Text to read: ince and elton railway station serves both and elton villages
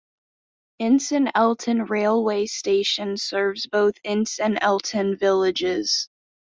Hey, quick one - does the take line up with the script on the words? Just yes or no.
no